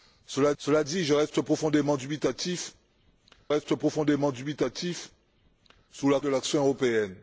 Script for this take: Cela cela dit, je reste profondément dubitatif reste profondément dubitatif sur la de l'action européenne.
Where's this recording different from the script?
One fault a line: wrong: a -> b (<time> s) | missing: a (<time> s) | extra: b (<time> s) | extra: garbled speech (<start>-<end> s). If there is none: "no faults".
no faults